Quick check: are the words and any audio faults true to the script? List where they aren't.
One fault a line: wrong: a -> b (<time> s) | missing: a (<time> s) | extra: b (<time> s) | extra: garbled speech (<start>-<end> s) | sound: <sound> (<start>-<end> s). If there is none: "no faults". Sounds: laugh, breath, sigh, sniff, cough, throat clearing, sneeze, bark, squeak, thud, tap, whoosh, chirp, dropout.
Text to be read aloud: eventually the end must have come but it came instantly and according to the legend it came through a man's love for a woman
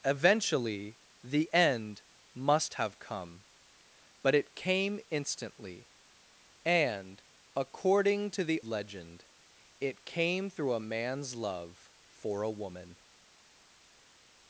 no faults